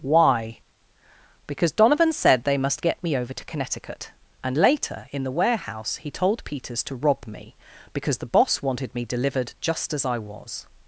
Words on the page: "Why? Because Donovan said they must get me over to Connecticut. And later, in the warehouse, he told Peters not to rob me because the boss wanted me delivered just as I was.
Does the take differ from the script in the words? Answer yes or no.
yes